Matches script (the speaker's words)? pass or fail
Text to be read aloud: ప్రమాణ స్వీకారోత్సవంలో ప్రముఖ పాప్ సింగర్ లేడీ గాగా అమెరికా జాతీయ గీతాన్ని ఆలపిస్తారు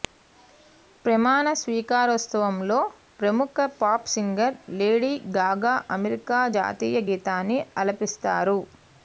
pass